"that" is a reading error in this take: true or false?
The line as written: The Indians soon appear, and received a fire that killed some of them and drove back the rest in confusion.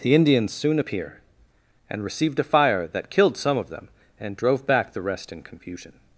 false